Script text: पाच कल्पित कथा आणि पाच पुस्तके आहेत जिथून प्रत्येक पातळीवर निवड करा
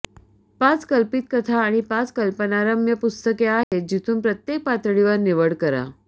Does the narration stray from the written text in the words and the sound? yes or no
yes